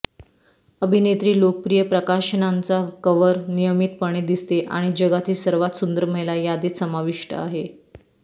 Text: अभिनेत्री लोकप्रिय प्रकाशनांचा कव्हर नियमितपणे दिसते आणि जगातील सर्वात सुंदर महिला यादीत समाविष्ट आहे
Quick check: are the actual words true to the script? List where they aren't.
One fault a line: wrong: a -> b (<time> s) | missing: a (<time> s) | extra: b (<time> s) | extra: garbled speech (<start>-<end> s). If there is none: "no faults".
no faults